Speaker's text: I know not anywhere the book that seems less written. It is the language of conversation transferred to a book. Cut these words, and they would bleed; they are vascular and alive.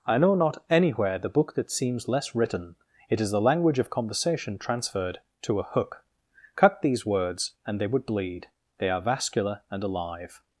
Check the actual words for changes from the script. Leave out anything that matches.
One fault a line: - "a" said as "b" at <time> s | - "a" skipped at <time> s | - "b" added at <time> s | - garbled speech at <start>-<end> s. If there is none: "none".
- "book" said as "hook" at 5.6 s